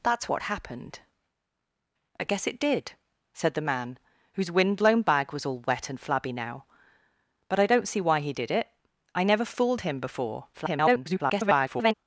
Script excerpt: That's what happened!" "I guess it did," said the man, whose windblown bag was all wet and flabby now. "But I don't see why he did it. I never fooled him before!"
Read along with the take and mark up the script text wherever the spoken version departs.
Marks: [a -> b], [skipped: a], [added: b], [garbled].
That's what happened!" "I guess it did," said the man, whose windblown bag was all wet and flabby now. "But I don't see why he did it. I never fooled him before!" [garbled]